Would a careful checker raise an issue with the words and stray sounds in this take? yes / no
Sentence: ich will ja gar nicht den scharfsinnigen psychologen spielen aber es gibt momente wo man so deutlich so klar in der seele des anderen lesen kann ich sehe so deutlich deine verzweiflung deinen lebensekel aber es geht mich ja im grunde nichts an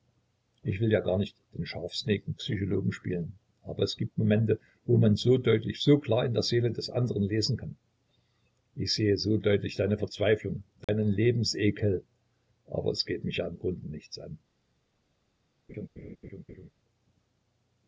yes